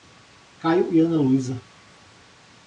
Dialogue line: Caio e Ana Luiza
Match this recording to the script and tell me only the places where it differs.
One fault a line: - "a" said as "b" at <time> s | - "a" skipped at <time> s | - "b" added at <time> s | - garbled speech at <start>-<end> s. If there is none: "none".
none